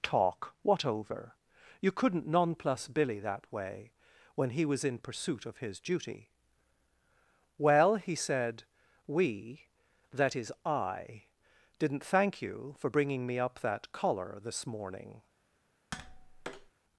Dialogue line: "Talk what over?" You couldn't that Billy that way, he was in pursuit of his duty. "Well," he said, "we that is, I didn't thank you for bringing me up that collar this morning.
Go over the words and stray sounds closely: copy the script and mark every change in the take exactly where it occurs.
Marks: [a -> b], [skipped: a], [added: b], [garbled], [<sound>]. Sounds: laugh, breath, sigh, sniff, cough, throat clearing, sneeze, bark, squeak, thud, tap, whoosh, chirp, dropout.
"Talk what over?" You couldn't [that -> nonplus] Billy that way, [added: when] he was in pursuit of his duty. "Well," he said, "we that is, I didn't thank you for bringing me up that collar this morning. [tap]